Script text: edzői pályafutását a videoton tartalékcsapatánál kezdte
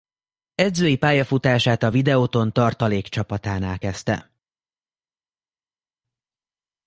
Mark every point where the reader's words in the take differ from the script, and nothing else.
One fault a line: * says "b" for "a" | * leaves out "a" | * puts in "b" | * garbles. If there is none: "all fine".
all fine